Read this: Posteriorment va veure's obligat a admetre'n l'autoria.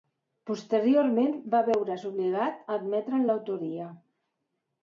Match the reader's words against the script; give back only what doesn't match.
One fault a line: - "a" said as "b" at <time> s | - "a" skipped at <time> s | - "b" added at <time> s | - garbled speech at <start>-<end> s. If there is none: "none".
none